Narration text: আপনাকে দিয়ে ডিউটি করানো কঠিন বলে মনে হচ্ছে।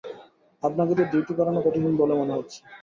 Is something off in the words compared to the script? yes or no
no